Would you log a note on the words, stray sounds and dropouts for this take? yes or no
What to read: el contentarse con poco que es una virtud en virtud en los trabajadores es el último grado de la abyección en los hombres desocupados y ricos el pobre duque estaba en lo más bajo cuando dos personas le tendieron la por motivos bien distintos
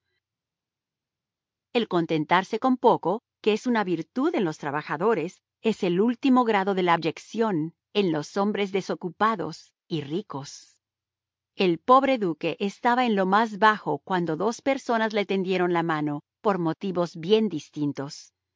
yes